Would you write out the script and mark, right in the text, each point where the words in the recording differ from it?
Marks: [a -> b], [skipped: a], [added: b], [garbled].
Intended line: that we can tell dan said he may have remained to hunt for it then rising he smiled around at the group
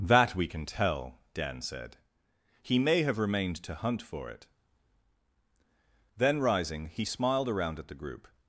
that we can tell dan said he may have remained to hunt for it then rising he smiled around at the group